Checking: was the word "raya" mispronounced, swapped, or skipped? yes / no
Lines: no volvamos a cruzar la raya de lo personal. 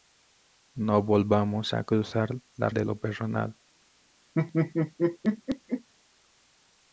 yes